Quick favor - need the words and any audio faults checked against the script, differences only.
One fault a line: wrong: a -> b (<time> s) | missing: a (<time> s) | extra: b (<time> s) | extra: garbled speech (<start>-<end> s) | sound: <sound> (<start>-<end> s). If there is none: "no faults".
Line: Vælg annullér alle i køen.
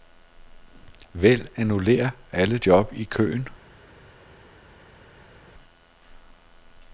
extra: job (2.7 s)